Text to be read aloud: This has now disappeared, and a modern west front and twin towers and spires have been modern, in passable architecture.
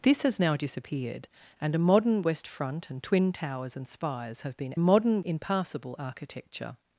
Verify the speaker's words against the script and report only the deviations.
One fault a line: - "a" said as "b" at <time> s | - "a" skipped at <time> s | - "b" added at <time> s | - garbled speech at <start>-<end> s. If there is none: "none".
none